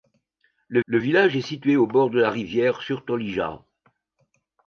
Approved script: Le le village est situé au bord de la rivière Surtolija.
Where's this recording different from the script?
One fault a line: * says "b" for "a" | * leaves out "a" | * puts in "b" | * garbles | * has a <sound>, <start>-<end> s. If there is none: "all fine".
all fine